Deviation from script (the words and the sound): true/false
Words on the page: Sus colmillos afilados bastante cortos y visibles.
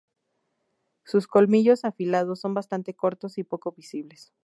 true